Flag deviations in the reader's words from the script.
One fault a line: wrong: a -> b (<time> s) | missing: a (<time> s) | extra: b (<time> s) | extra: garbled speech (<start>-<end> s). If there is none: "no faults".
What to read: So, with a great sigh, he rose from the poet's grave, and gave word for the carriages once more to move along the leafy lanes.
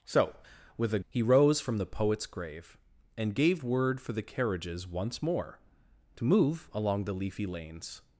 missing: great sigh (1.0 s)